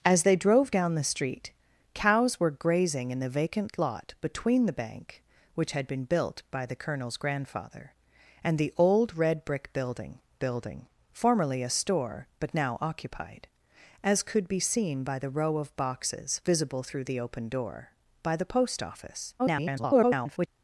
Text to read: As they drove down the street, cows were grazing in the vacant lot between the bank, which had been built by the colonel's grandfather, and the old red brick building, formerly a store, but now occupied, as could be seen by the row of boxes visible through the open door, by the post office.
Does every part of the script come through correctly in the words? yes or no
no